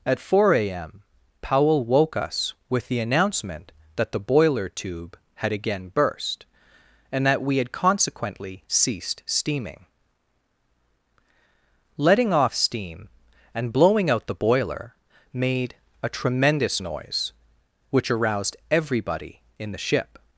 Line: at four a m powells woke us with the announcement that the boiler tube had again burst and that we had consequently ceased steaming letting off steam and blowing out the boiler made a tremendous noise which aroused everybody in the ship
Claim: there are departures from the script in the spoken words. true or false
true